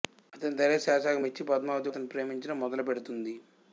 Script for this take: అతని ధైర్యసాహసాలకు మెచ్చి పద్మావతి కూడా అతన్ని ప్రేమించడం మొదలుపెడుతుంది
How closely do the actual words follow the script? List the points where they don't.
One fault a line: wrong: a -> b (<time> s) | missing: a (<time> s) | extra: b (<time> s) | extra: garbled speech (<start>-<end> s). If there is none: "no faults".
missing: కూడా (1.9 s)